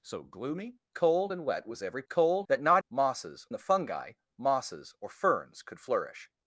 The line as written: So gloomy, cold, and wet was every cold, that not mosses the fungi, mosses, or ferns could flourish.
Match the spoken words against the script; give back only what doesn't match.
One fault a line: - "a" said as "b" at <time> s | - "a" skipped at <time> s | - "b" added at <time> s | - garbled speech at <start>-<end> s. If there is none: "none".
none